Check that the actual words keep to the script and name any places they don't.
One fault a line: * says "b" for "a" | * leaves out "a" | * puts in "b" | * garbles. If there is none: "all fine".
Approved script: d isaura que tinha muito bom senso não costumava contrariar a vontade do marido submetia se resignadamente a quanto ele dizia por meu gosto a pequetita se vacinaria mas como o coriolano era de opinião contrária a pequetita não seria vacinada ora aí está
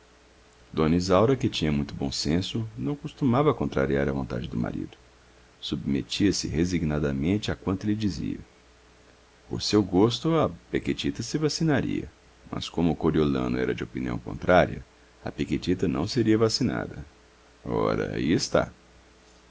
* says "seu" for "meu"